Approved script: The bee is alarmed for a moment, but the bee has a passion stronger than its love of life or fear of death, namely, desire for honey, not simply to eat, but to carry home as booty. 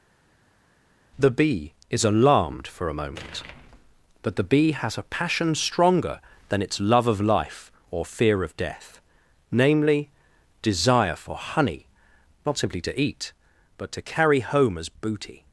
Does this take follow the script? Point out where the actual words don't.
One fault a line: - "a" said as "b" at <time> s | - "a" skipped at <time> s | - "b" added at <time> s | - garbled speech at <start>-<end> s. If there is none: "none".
none